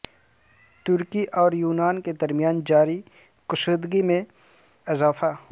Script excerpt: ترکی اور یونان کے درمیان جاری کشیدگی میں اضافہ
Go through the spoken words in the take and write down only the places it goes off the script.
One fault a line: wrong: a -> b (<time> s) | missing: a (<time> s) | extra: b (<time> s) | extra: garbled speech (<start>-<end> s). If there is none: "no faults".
no faults